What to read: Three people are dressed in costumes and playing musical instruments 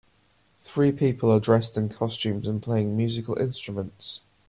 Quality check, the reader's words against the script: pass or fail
pass